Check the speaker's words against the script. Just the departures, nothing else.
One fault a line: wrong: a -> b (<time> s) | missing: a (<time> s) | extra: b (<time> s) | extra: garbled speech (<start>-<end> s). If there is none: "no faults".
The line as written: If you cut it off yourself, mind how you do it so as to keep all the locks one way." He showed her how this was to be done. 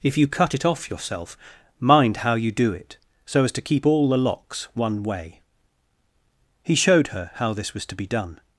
no faults